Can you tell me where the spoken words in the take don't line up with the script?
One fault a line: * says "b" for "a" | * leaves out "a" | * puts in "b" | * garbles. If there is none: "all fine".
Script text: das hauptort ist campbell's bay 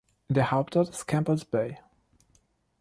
* says "der" for "das"